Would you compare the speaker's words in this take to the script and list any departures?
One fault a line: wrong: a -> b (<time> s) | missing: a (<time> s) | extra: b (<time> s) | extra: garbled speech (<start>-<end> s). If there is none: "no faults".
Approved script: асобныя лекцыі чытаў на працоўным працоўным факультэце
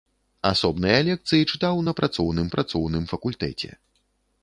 no faults